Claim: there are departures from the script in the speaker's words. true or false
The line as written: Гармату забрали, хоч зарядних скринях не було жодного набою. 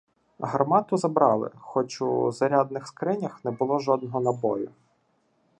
true